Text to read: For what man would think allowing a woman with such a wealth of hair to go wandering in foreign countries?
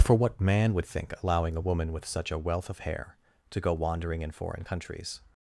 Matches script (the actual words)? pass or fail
pass